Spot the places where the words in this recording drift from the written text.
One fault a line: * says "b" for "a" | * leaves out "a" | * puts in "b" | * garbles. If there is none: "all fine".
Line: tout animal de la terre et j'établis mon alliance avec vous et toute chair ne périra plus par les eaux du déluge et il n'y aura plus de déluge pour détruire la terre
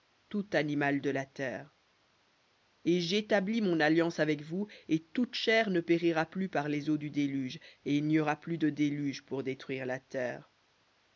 all fine